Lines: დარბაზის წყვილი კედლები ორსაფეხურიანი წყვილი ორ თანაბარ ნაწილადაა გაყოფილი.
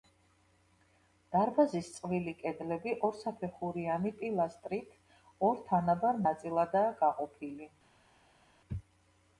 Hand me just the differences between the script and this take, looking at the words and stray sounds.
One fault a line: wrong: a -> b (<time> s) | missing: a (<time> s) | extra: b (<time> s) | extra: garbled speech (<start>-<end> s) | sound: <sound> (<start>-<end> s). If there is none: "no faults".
wrong: წყვილი -> პილასტრით (4.2 s)